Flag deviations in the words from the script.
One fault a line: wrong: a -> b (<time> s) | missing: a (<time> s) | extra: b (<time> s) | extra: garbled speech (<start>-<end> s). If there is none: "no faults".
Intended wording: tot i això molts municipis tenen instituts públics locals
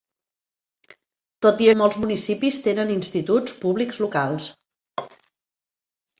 missing: això (1.7 s)